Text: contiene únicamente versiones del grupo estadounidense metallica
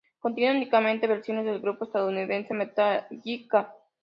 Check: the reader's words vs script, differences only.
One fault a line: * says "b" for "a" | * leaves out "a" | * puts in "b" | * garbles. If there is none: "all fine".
all fine